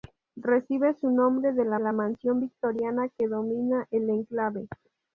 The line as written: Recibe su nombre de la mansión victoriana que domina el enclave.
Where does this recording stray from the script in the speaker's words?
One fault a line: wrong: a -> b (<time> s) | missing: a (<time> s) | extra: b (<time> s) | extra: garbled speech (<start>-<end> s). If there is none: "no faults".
extra: la (1.8 s)